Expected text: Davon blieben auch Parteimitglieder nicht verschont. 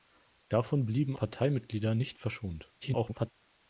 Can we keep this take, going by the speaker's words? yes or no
no